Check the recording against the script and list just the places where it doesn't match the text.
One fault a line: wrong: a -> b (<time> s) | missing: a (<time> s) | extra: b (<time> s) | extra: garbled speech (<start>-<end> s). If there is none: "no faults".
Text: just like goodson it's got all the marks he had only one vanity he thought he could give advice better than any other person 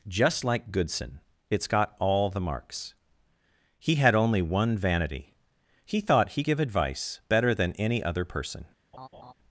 missing: could (6.4 s)